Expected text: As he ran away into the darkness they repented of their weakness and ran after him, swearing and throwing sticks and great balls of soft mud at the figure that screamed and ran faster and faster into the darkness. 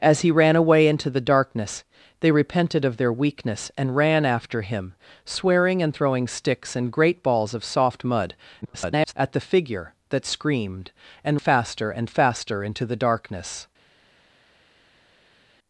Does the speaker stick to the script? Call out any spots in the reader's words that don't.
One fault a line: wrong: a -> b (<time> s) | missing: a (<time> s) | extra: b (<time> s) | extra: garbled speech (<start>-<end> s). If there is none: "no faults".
extra: garbled speech (8.6-9.1 s)
missing: ran (11.4 s)